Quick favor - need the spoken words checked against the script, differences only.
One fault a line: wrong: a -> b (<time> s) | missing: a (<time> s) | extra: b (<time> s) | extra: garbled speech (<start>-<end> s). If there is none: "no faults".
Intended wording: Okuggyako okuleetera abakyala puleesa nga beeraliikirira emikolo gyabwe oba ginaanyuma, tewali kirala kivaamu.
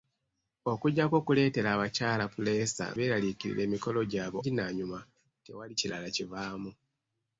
missing: nga (2.9 s)
missing: oba (4.4 s)